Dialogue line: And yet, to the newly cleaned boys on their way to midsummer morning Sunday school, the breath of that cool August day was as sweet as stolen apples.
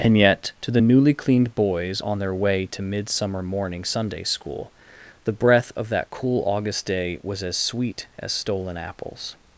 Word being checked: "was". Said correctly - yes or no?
yes